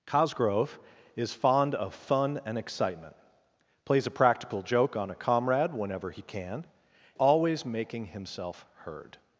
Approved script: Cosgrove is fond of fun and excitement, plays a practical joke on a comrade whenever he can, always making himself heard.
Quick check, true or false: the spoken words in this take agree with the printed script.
true